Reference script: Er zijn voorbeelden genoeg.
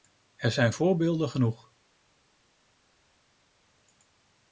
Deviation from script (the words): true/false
false